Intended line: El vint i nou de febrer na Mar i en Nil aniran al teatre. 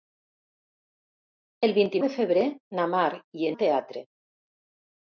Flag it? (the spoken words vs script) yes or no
yes